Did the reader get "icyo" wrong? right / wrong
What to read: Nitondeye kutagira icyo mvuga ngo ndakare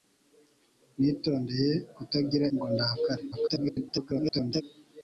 wrong